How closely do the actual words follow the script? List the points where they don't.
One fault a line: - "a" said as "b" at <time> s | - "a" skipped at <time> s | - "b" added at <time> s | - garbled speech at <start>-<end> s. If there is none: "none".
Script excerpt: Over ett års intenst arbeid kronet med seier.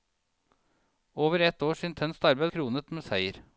none